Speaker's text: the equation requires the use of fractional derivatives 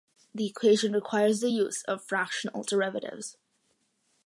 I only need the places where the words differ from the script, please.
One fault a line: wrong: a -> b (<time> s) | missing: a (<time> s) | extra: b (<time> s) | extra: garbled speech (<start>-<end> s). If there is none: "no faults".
no faults